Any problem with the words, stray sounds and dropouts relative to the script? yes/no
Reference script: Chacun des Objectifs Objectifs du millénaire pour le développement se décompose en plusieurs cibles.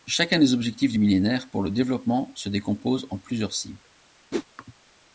yes